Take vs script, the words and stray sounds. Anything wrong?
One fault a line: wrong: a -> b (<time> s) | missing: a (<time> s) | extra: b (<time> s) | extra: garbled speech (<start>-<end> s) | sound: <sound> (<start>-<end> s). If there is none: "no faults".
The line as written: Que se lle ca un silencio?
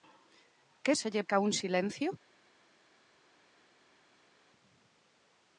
no faults